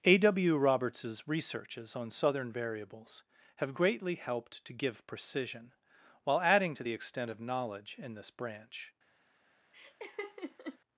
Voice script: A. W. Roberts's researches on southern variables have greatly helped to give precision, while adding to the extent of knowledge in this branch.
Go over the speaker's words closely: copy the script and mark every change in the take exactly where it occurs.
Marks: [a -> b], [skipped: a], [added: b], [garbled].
A. W. Roberts's researches on southern variables have greatly helped to give precision, while adding to the extent of knowledge in this branch.